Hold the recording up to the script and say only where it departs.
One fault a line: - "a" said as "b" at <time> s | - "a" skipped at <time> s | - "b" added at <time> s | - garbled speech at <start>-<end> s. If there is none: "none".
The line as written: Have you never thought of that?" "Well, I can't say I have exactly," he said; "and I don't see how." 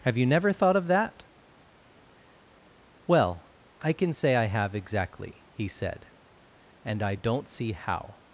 - "can't" said as "can" at 3.9 s